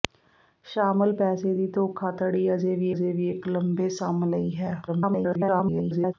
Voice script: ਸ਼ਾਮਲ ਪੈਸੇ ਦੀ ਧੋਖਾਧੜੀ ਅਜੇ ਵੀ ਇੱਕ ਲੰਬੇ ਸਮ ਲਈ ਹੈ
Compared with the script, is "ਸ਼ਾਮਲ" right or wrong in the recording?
right